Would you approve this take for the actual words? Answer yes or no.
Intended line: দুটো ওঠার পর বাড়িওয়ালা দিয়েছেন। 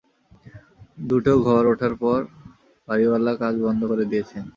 no